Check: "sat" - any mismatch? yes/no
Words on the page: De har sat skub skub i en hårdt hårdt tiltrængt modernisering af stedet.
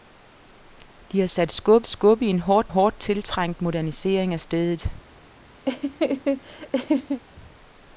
no